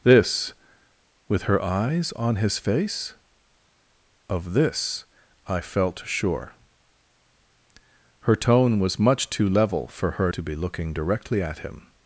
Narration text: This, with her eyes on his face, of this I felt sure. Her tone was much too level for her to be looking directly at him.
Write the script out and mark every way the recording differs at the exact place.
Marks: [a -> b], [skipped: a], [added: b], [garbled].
This, with her eyes on his face, of this I felt sure. Her tone was much too level for her to be looking directly at him.